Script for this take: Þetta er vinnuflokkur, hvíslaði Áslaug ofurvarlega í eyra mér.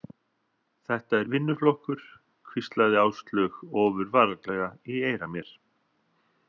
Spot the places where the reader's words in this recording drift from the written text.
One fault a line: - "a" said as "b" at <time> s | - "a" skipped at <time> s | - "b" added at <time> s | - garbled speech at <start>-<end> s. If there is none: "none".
none